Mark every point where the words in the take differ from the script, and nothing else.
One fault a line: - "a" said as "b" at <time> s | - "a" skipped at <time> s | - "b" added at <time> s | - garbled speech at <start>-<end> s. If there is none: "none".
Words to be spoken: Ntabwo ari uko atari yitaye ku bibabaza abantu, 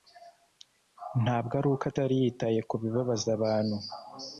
none